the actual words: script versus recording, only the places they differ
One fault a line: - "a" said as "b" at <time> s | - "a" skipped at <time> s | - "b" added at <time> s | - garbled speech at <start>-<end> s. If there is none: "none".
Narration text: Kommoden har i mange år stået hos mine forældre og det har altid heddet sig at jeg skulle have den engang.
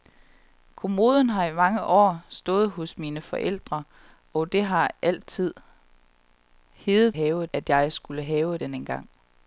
- "sig" said as "have" at 7.1 s